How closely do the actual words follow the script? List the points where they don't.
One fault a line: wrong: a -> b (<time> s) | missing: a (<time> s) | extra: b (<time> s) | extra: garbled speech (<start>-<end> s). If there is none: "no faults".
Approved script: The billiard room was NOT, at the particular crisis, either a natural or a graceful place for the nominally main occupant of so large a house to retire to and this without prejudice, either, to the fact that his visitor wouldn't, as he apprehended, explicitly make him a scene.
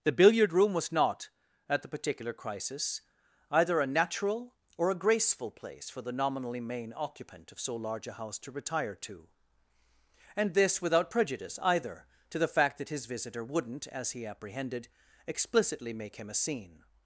no faults